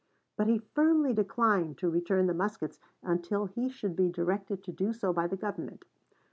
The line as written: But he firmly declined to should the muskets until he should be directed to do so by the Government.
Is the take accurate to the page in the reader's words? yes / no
no